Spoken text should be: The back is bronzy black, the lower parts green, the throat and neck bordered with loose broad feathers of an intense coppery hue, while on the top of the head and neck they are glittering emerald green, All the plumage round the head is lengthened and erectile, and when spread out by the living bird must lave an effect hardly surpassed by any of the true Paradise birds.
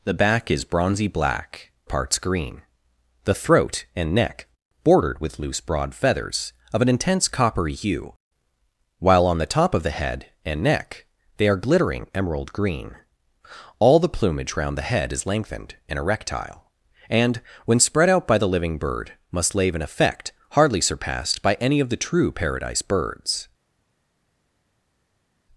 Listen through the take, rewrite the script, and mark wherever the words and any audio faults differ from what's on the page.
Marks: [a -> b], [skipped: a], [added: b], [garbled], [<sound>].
The back is bronzy black, [skipped: the lower] parts green, the throat and neck bordered with loose broad feathers of an intense coppery hue, while on the top of the head and neck they are glittering emerald green, All the plumage round the head is lengthened and erectile, and when spread out by the living bird must lave an effect hardly surpassed by any of the true Paradise birds.